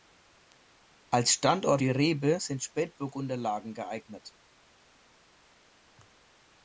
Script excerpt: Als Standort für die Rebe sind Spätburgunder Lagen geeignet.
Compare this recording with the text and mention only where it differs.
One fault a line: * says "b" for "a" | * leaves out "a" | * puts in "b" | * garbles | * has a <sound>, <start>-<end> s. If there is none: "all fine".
* leaves out "für"